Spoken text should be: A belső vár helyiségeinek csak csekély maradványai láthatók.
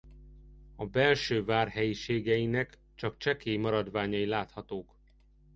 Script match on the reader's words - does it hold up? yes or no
yes